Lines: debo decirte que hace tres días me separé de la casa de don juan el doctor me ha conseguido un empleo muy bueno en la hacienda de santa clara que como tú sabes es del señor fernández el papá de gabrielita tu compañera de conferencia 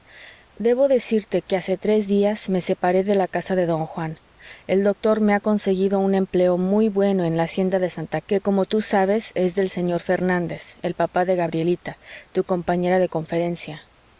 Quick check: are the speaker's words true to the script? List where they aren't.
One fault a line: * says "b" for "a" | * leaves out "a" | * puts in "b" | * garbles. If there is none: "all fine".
* leaves out "clara"